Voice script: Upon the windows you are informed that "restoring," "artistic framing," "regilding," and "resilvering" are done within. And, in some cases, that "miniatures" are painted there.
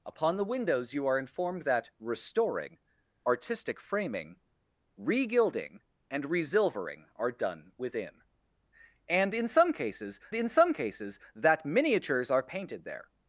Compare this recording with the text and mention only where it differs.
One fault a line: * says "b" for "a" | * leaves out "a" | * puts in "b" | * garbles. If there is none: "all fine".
* puts in "in some cases"